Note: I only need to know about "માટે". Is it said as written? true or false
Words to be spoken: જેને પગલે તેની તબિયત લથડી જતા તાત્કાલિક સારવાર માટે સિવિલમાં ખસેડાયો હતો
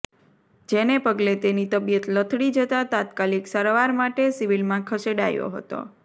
true